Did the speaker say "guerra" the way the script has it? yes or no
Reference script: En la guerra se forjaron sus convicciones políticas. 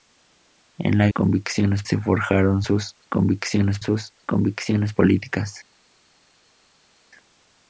no